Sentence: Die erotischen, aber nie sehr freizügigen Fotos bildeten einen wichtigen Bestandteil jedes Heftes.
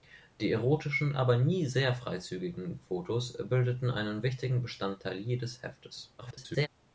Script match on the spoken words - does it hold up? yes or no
no